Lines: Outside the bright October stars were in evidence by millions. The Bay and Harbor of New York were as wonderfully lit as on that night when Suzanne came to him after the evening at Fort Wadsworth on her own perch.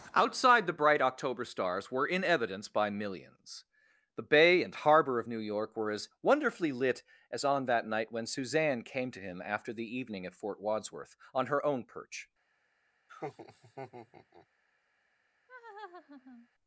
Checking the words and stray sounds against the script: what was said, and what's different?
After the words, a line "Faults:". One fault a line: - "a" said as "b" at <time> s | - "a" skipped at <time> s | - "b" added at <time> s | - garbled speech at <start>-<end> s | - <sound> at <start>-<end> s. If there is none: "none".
Outside the bright October stars were in evidence by millions. The Bay and Harbor of New York were as wonderfully lit as on that night when Suzanne came to him after the evening at Fort Wadsworth on her own perch.
Faults:
- laugh at 13.1-14.5 s
- laugh at 15.5-16.5 s